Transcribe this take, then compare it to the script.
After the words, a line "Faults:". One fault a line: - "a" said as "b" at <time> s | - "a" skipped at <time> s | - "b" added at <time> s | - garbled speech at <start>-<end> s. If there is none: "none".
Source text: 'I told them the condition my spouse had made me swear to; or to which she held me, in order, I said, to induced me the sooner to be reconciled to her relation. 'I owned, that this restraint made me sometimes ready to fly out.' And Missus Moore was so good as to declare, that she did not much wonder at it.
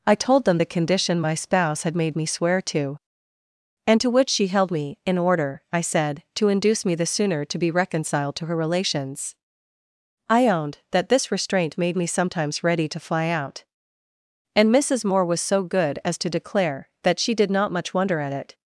'I told them the condition my spouse had made me swear to; and to which she held me, in order, I said, to induce me the sooner to be reconciled to her relations. 'I owned, that this restraint made me sometimes ready to fly out.' And Missus Moore was so good as to declare, that she did not much wonder at it.
Faults:
- "or" said as "and" at 3.8 s
- "induced" said as "induce" at 6.5 s
- "relation" said as "relations" at 8.5 s